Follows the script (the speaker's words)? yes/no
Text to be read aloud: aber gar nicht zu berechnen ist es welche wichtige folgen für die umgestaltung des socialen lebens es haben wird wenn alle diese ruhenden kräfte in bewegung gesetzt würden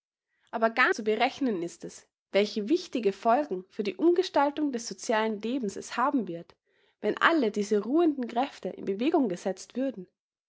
no